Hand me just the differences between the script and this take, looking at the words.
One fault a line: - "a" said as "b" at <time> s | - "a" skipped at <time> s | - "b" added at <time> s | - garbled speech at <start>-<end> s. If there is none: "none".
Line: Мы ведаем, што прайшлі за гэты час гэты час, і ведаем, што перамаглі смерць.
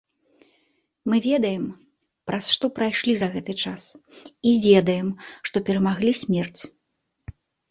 - "праз" added at 2.3 s
- "гэты час" skipped at 3.8 s